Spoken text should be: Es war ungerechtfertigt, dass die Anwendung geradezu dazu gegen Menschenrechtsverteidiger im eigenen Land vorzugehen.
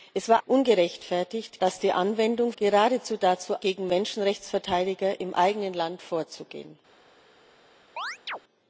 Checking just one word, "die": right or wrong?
right